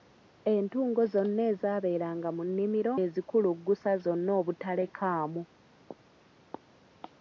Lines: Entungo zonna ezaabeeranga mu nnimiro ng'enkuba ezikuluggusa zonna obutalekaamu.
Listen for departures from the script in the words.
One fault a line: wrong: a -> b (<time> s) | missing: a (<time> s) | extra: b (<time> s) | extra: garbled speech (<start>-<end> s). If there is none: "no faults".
missing: ng'enkuba (2.9 s)